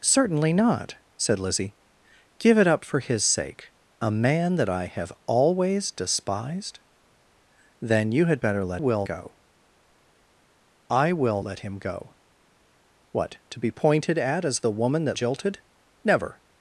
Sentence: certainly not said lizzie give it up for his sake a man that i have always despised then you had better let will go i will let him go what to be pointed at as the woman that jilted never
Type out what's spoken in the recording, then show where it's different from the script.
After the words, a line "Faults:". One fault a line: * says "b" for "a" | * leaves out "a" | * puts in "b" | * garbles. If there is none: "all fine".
certainly not said lizzie give it up for his sake a man that i have always despised then you had better let will go i will let him go what to be pointed at as the woman that jilted never
Faults:
all fine